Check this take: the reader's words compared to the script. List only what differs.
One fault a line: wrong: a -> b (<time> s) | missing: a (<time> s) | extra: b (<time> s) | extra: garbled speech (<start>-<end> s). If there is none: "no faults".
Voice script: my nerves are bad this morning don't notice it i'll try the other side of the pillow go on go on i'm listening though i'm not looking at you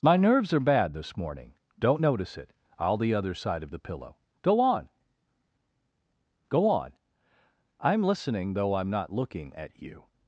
missing: try (3.0 s)